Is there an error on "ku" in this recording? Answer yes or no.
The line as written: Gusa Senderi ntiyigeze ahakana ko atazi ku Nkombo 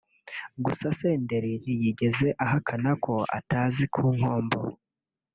no